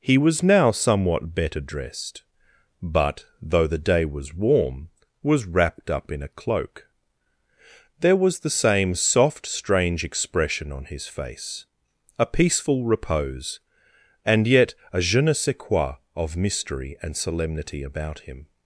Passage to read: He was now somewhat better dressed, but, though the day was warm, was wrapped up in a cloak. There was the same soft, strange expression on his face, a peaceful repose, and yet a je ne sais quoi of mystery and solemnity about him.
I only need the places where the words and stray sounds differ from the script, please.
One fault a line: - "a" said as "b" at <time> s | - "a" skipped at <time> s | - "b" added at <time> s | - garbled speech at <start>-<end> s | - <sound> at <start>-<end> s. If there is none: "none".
none